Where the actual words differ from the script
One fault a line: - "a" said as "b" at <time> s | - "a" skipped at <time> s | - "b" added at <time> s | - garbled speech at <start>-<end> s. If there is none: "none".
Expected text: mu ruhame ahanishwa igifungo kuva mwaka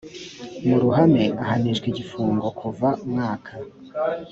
none